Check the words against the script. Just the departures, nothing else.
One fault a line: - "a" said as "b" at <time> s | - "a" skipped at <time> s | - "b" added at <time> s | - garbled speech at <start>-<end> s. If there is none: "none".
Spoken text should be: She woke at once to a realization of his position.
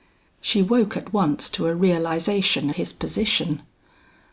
- "of" skipped at 2.7 s